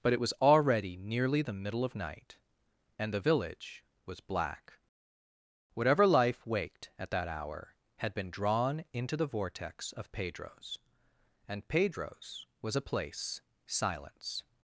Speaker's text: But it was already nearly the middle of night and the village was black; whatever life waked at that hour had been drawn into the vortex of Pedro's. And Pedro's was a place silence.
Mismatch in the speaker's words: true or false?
false